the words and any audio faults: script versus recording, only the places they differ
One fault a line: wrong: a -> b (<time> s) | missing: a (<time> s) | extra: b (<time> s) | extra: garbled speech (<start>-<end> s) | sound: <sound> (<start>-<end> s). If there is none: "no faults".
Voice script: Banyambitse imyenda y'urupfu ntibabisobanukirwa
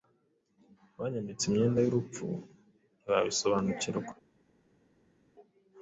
no faults